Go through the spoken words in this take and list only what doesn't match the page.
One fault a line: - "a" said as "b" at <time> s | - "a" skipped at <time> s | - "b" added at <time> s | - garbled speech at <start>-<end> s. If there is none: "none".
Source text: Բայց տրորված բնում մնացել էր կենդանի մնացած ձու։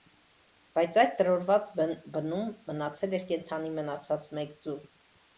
- "այդ" added at 1.0 s
- "մեկ" added at 4.4 s